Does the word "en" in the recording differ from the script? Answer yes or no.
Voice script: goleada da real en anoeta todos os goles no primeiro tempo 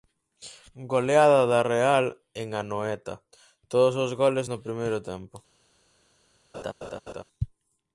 no